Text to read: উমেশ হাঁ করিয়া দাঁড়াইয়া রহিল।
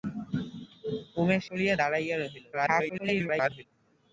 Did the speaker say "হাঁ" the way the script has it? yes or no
no